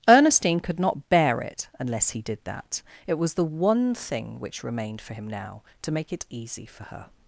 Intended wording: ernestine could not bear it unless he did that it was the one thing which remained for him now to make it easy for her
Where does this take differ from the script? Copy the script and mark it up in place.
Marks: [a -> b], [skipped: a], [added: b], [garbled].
ernestine could not bear it unless he did that it was the one thing which remained for him now to make it easy for her